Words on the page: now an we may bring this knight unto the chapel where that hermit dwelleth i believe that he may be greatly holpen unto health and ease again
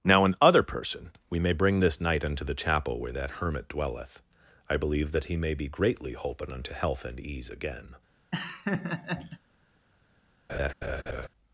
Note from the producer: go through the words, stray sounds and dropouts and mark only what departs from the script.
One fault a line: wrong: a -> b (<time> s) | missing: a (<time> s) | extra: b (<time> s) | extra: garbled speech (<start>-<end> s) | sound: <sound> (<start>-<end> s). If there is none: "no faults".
extra: other person (0.4 s)
sound: laugh (8.3-9.4 s)
sound: laugh (10.5-11.3 s)